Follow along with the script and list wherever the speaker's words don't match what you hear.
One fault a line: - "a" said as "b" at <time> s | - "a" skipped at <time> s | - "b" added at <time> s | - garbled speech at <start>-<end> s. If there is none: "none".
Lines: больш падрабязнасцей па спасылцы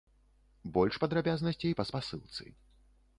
none